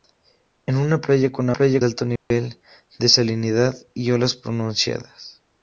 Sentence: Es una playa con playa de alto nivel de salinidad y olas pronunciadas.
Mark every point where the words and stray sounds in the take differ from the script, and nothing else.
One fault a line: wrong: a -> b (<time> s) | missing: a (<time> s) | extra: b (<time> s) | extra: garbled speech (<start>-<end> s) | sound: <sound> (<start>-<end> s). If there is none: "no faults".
sound: dropout (2.2-2.3 s)